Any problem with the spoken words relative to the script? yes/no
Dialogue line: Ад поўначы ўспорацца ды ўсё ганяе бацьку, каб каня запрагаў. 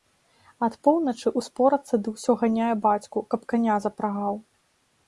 no